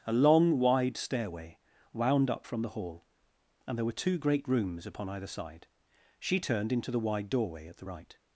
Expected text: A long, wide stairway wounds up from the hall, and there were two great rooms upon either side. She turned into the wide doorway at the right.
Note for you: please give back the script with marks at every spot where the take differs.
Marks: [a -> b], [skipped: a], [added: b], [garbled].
A long, wide stairway [wounds -> wound] up from the hall, and there were two great rooms upon either side. She turned into the wide doorway at the right.